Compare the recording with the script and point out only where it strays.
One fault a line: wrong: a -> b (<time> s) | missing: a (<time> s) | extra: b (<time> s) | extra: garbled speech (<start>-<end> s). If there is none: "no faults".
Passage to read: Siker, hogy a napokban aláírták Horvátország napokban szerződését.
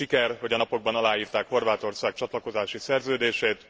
wrong: napokban -> csatlakozási (2.1 s)